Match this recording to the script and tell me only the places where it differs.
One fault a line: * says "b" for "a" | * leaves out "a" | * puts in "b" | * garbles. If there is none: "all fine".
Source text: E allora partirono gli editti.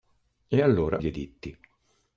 * leaves out "partirono"